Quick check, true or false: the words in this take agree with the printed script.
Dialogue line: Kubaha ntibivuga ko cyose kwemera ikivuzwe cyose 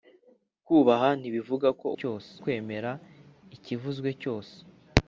true